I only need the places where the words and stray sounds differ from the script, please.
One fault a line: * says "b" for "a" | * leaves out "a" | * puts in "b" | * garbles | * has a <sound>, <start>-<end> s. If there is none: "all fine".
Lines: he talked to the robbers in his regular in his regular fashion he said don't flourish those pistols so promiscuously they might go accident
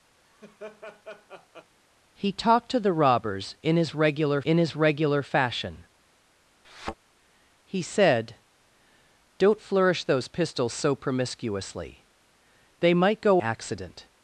* has a laugh, 0.2-1.7 s
* has a thud, 6.6-6.9 s